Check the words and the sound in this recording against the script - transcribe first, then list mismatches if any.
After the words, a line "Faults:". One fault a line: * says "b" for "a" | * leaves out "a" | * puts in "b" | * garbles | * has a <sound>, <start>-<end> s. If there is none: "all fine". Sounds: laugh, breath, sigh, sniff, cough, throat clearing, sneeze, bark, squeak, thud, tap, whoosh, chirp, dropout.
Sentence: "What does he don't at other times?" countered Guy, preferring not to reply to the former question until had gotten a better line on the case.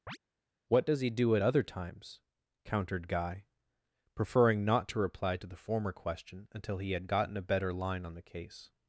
"What does he do at other times?" countered Guy, preferring not to reply to the former question until he had gotten a better line on the case.
Faults:
* has a chirp, 0.1-0.2 s
* says "do" for "don't"
* puts in "he"